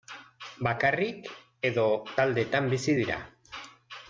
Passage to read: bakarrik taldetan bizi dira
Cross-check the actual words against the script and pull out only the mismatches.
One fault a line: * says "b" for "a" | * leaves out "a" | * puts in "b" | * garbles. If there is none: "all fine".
* puts in "edo"